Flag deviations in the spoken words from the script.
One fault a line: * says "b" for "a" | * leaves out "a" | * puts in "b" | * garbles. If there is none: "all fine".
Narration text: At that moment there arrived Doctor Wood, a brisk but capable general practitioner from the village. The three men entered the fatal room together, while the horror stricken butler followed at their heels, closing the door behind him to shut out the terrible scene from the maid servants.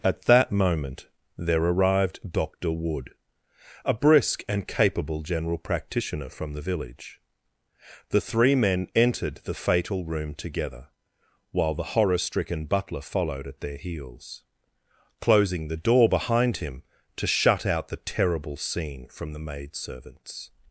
* says "and" for "but"